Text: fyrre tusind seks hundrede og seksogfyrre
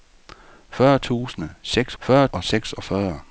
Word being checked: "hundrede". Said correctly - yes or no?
no